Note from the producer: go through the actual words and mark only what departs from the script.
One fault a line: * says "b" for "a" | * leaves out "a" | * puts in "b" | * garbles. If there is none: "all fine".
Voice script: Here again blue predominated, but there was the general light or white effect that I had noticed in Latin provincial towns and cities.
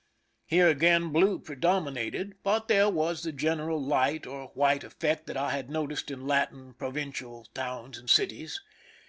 all fine